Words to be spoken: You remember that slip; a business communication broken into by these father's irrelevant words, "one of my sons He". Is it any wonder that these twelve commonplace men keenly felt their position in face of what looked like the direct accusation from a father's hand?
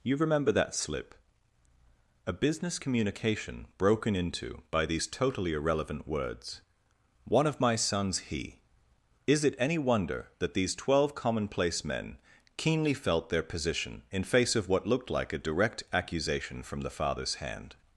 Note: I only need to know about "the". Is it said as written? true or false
false